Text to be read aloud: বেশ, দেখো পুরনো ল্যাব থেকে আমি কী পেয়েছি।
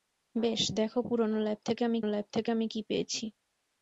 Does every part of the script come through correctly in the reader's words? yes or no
no